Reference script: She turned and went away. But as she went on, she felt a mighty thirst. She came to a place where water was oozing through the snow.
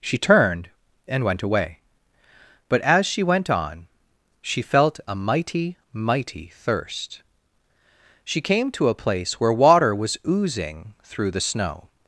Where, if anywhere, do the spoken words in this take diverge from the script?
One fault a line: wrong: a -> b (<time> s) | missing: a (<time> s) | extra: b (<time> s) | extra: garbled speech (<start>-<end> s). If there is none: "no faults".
extra: mighty (5.9 s)